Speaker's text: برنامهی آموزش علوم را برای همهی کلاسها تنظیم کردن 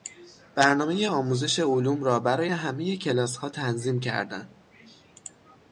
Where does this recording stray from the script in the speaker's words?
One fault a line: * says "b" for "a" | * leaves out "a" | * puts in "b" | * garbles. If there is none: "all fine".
all fine